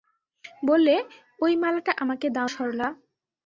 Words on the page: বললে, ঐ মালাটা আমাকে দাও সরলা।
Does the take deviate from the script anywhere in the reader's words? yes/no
no